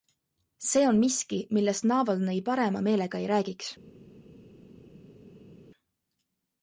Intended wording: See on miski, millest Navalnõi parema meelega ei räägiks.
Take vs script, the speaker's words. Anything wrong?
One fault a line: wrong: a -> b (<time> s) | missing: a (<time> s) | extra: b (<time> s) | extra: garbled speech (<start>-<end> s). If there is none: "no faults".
no faults